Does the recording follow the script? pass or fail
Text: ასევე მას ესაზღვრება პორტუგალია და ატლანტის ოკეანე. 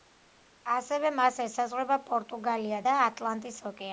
pass